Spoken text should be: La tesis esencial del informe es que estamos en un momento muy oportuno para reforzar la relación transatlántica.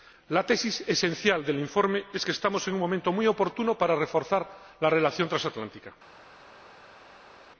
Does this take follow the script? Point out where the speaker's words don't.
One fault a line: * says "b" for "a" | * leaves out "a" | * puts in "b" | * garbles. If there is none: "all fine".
all fine